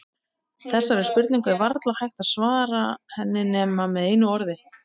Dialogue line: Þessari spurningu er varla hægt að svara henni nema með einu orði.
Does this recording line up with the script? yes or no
yes